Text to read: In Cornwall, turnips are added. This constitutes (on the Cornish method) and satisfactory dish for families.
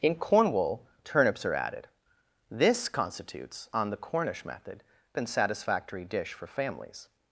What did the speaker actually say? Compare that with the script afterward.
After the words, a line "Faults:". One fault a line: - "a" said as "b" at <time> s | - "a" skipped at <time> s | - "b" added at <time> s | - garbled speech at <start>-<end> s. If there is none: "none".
In Cornwall, turnips are added. This constitutes (on the Cornish method) and satisfactory dish for families.
Faults:
none